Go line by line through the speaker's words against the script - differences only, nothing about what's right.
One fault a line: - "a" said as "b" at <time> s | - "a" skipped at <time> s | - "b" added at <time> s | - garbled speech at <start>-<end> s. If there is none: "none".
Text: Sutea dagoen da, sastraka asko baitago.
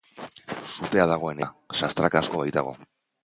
none